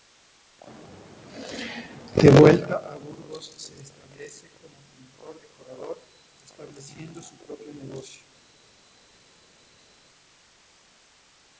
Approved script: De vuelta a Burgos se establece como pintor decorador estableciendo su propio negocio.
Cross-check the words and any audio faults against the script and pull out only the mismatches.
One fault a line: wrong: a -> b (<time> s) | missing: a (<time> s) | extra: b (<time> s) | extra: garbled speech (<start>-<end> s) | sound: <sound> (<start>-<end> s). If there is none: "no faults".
no faults